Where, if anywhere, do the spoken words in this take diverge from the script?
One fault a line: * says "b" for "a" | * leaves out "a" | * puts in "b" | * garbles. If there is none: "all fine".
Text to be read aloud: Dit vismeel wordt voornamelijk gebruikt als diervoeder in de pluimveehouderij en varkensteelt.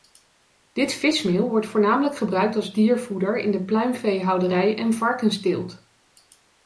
all fine